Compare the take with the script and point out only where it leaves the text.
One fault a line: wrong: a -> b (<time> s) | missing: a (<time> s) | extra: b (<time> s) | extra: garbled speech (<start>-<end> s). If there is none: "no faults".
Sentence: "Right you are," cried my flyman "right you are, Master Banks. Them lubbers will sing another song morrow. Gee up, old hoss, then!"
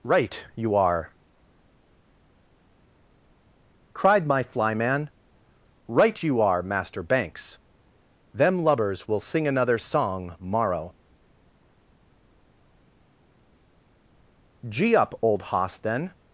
no faults